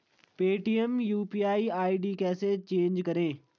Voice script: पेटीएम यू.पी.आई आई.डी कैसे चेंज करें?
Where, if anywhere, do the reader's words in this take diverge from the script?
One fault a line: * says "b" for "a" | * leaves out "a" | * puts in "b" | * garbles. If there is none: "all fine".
all fine